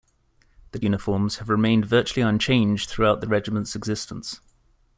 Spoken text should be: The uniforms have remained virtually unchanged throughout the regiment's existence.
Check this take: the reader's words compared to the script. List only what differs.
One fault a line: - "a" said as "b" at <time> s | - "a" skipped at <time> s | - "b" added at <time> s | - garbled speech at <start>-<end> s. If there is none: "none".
none